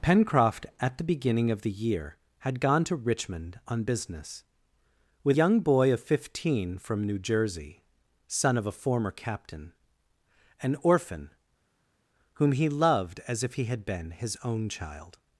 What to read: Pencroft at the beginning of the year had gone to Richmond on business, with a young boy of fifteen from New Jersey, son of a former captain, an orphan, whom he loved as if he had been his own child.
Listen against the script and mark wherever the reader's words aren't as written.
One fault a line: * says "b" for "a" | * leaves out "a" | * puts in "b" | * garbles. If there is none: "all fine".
* leaves out "a"